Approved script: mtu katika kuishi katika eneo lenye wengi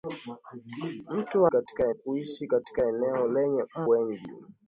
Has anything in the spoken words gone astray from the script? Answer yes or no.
no